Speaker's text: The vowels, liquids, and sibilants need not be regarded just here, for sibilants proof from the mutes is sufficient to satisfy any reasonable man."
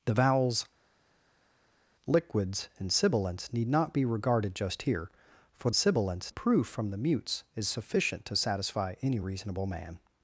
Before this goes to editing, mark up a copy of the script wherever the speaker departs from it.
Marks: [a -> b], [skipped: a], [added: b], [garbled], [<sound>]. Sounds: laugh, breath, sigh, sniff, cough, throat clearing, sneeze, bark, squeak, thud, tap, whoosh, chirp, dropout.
The vowels, liquids, and sibilants need not be regarded just here, for sibilants proof from the mutes is sufficient to satisfy any reasonable man."